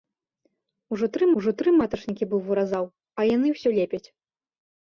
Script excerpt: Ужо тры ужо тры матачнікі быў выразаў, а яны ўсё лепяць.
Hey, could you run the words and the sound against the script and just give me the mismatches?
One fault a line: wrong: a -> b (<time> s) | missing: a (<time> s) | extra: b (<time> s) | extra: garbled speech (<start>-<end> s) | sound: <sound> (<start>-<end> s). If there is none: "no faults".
no faults